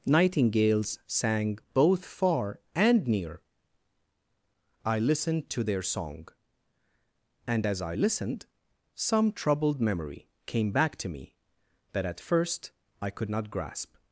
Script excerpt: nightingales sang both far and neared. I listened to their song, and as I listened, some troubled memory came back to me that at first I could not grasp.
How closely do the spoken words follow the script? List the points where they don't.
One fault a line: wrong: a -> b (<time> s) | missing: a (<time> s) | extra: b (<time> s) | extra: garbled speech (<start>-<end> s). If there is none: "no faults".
wrong: neared -> near (3.1 s)